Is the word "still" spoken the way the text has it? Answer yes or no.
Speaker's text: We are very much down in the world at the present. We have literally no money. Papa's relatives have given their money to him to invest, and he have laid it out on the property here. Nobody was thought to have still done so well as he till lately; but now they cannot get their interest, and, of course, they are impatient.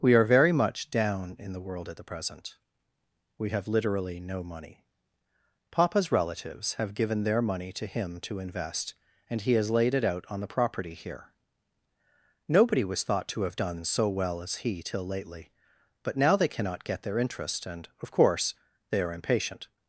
no